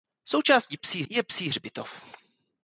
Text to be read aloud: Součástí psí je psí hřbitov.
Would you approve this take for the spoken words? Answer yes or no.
yes